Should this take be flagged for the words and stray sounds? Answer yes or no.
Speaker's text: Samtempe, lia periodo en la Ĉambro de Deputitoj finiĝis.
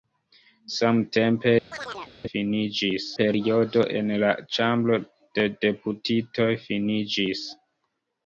yes